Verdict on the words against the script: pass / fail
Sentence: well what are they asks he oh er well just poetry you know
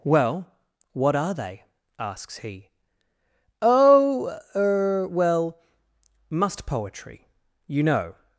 fail